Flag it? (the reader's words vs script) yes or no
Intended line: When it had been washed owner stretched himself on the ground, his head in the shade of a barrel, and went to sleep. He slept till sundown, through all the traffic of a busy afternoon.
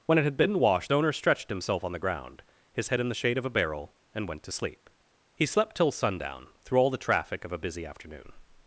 no